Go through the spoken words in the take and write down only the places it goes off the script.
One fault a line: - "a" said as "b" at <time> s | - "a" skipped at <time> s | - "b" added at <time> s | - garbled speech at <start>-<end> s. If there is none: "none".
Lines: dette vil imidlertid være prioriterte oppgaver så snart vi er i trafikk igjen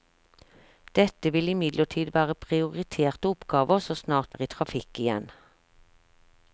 - "vi" skipped at 4.3 s